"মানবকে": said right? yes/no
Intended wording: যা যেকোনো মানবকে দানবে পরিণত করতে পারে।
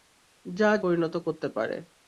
no